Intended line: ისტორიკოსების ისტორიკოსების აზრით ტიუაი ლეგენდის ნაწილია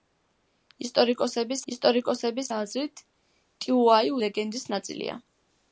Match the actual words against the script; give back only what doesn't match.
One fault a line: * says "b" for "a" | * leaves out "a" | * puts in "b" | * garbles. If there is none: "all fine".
all fine